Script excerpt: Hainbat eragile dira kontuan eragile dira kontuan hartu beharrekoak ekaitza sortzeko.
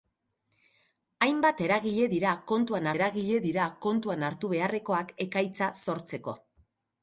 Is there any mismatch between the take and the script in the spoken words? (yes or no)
no